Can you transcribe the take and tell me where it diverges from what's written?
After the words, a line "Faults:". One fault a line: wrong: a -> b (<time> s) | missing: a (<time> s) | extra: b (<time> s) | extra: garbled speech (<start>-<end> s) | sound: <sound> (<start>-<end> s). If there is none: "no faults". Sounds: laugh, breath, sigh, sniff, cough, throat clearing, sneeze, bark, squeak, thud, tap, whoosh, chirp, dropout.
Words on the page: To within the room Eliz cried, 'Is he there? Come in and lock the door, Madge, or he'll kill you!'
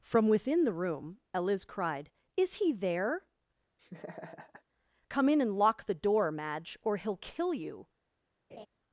From within the room Eliz cried, 'Is he there? Come in and lock the door, Madge, or he'll kill you!'
Faults:
wrong: To -> From (0.0 s)
sound: laugh (3.8-4.6 s)
sound: laugh (8.5-8.7 s)